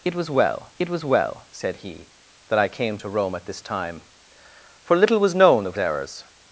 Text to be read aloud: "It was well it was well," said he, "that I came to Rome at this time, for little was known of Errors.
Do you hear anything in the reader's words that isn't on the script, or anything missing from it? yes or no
no